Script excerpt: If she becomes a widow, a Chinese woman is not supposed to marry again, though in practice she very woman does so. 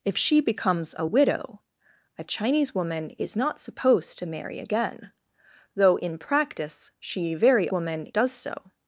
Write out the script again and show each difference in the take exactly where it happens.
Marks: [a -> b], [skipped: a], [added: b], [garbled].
If she becomes a widow, a Chinese woman is not supposed to marry again, though in practice she very woman does so.